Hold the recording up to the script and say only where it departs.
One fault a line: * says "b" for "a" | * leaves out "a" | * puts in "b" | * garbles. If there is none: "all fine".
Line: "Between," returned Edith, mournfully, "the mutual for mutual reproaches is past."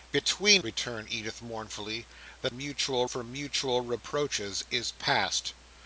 all fine